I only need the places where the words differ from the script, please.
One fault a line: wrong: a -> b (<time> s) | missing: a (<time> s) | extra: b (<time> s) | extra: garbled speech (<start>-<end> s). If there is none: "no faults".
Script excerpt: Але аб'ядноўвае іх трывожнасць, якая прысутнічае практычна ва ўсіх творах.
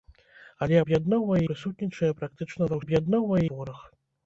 missing: іх трывожнасць якая (1.4 s)
wrong: ўсіх -> аб'ядноўвае (2.8 s)